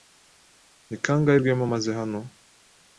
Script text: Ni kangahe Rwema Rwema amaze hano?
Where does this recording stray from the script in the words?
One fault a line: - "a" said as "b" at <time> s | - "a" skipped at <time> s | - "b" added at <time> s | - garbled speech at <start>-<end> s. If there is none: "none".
- "Rwema" skipped at 1.6 s